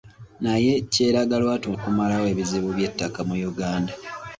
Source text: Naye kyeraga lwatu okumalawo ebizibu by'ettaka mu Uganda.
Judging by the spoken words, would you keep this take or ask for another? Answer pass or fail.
pass